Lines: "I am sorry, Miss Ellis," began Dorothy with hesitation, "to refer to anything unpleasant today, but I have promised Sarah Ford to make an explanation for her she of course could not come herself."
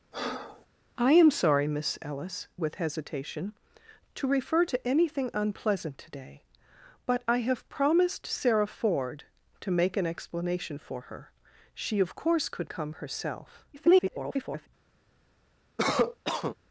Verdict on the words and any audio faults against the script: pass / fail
fail